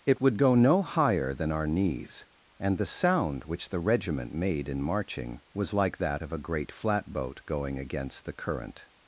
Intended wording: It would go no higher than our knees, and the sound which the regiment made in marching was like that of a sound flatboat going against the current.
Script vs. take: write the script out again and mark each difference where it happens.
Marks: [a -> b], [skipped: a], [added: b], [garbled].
It would go no higher than our knees, and the sound which the regiment made in marching was like that of a [sound -> great] flatboat going against the current.